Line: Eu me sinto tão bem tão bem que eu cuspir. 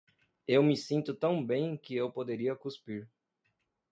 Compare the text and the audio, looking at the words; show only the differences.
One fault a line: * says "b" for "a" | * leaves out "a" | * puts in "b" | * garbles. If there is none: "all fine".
* leaves out "tão bem"
* puts in "poderia"